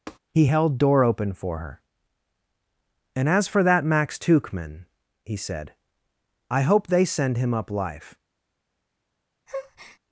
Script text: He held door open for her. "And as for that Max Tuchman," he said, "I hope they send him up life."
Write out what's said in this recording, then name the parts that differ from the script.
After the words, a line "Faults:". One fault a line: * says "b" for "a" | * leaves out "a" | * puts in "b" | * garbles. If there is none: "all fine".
He held door open for her. "And as for that Max Tuchman," he said, "I hope they send him up life."
Faults:
all fine